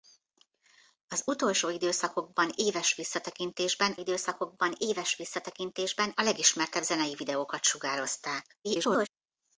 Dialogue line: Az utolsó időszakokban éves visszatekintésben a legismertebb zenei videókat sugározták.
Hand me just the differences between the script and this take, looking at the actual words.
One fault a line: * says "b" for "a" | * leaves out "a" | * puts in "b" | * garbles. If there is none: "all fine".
* puts in "időszakokban éves visszatekintésben"
* garbles